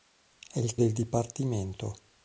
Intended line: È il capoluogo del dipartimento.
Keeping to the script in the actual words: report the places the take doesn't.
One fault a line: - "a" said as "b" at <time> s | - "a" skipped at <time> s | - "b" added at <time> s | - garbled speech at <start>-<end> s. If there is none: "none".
- "capoluogo" skipped at 0.8 s